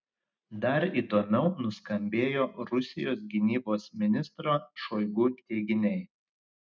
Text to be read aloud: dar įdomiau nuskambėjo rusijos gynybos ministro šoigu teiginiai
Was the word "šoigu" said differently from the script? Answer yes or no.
no